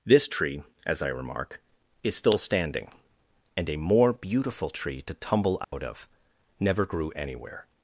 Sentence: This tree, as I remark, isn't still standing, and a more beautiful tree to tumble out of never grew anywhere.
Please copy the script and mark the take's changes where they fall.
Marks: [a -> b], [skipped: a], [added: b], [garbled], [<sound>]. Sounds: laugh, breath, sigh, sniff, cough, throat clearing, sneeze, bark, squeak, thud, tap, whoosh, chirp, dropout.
This tree, as I remark, [isn't -> is] still standing, and a more beautiful tree to tumble out [dropout] of never grew anywhere.